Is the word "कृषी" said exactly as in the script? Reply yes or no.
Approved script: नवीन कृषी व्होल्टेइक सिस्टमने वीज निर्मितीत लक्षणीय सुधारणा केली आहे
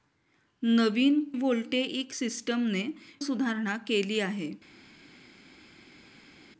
no